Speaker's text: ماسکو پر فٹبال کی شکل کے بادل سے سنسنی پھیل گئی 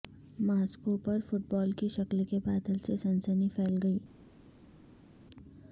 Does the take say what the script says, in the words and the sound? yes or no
yes